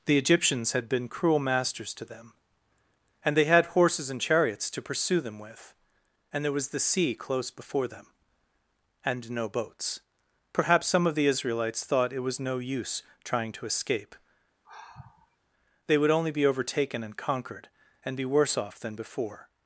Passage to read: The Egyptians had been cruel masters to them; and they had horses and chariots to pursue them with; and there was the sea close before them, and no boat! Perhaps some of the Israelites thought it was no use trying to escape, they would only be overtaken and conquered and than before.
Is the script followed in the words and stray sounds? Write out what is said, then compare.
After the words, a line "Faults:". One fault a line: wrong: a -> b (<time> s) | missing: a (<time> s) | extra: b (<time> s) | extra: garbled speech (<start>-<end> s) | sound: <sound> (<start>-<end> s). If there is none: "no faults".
The Egyptians had been cruel masters to them; and they had horses and chariots to pursue them with; and there was the sea close before them, and no boats! Perhaps some of the Israelites thought it was no use trying to escape, they would only be overtaken and conquered and be worse off than before.
Faults:
wrong: boat -> boats (9.5 s)
sound: sigh (14.6-15.4 s)
extra: be worse off (18.2 s)